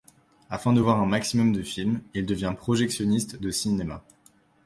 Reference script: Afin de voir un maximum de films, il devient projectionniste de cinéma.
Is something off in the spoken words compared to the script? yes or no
no